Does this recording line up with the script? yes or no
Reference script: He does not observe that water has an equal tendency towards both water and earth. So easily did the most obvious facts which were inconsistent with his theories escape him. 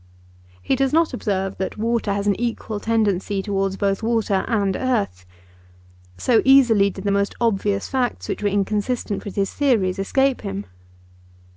yes